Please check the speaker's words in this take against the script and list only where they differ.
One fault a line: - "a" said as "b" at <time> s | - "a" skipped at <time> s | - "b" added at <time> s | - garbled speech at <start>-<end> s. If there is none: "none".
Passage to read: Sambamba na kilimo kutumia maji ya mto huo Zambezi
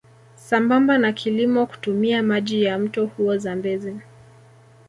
none